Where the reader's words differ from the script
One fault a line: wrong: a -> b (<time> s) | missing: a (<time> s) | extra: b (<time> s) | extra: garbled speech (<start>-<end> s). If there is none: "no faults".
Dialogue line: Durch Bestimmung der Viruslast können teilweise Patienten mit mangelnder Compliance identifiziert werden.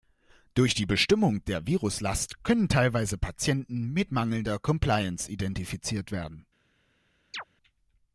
extra: die (0.7 s)